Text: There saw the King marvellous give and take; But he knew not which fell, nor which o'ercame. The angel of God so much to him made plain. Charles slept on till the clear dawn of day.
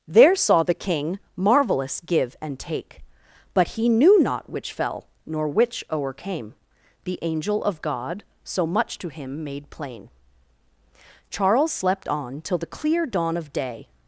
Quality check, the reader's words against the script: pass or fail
pass